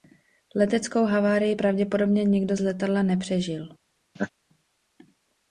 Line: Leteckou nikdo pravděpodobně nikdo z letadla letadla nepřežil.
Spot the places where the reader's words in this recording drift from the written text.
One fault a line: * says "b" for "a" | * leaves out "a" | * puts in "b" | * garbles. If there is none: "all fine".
* says "havárii" for "nikdo"
* leaves out "letadla"